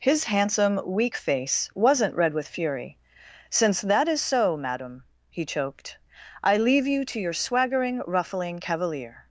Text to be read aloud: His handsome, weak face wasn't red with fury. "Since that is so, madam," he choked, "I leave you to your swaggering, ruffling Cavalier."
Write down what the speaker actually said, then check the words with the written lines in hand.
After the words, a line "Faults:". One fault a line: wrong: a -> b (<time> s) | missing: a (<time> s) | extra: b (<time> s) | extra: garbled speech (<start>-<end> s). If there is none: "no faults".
His handsome, weak face wasn't red with fury. "Since that is so, madam," he choked, "I leave you to your swaggering, ruffling Cavalier."
Faults:
no faults